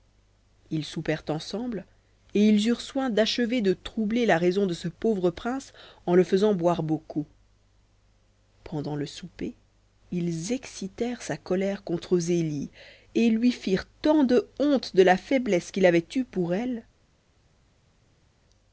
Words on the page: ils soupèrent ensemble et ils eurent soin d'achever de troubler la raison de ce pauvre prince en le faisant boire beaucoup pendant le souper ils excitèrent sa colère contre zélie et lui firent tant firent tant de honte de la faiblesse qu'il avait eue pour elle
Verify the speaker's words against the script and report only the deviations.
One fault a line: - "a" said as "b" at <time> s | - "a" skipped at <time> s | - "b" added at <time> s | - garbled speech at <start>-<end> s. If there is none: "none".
- "firent tant" skipped at 14.2 s